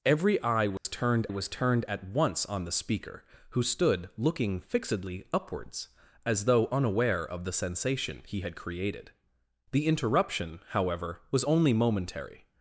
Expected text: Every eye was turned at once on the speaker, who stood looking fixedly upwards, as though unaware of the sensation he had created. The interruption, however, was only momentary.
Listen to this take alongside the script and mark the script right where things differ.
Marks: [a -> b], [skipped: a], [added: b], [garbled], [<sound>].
Every eye was [dropout] turned [added: was turned] at once on the speaker, who stood looking fixedly upwards, as though unaware of the sensation he had created. The interruption, however, was only momentary.